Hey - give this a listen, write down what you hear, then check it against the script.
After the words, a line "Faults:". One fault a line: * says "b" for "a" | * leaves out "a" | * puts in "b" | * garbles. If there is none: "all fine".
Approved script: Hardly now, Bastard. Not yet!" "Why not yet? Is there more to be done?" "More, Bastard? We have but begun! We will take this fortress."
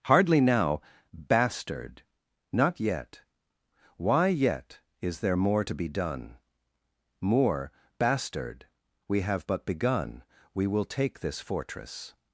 Hardly now, Bastard. Not yet!" "Why yet? Is there more to be done?" "More, Bastard? We have but begun! We will take this fortress."
Faults:
* leaves out "not"